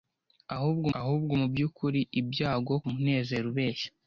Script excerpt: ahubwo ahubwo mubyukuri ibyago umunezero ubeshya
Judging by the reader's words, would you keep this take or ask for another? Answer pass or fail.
pass